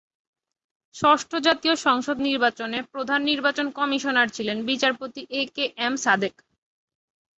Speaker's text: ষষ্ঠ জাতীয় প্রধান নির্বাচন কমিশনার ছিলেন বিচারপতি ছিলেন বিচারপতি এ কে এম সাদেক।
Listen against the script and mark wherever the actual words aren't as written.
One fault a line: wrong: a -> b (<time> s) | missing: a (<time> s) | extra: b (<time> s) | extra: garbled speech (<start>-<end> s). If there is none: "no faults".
extra: সংসদ নির্বাচনে (1.9 s)
missing: ছিলেন বিচারপতি (5.2 s)